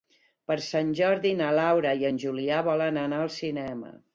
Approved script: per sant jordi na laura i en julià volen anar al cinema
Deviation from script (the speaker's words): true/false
false